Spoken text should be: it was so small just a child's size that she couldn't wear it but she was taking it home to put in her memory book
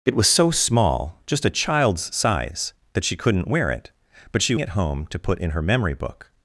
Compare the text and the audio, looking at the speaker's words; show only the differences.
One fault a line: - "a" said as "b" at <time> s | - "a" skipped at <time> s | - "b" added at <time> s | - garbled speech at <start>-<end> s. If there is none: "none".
- "was taking" skipped at 4.5 s